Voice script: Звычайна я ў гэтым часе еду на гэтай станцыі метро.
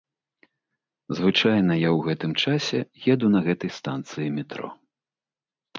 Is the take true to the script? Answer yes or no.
yes